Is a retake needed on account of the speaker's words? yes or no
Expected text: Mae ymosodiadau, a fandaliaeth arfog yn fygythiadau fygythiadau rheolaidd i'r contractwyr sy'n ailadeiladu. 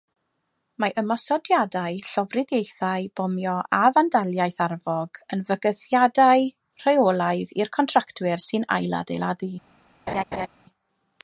yes